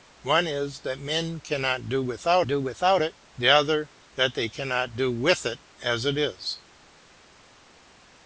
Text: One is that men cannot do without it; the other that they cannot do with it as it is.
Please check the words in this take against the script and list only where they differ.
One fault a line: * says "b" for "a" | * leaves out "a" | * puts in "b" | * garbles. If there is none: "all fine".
* puts in "do without"